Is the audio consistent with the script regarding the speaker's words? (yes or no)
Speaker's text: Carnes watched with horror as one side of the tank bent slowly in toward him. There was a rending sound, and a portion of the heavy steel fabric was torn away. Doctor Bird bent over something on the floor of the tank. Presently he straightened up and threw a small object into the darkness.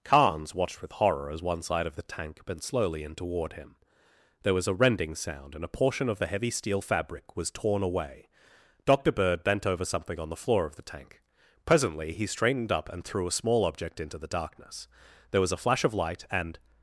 no